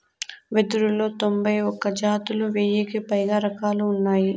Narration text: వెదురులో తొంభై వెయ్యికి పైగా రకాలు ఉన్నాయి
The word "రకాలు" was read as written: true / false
true